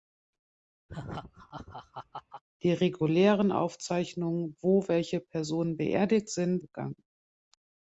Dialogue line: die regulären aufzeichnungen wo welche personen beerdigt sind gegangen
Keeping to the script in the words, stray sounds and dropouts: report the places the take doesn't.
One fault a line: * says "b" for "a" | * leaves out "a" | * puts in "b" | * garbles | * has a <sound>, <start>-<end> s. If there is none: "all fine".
* has a laugh, 0.9-2.4 s